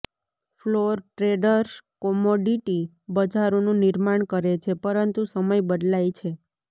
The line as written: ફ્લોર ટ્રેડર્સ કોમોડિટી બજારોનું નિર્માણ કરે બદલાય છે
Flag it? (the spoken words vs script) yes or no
yes